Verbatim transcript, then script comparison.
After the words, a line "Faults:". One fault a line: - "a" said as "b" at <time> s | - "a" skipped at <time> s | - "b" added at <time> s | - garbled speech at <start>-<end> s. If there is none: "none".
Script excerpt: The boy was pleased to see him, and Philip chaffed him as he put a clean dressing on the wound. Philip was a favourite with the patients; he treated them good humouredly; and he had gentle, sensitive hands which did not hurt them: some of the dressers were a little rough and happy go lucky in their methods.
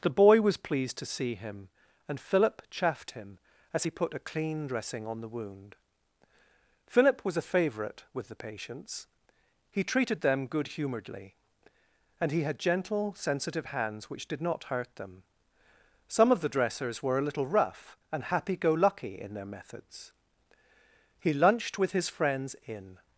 The boy was pleased to see him, and Philip chaffed him as he put a clean dressing on the wound. Philip was a favourite with the patients; he treated them good humouredly; and he had gentle, sensitive hands which did not hurt them: some of the dressers were a little rough and happy go lucky in their methods. He lunched with his friends in
Faults:
- "He lunched with his friends in" added at 21.2 s